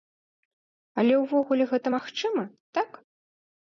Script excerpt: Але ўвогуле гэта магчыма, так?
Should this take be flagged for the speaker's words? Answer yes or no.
no